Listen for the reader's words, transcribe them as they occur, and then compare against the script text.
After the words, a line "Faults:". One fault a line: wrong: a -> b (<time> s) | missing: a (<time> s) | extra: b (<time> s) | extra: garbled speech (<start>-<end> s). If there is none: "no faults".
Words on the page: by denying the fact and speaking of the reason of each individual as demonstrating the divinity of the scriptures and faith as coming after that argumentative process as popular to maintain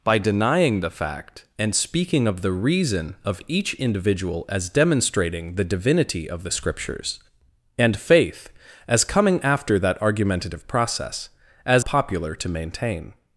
by denying the fact and speaking of the reason of each individual as demonstrating the divinity of the scriptures and faith as coming after that argumentative process as popular to maintain
Faults:
no faults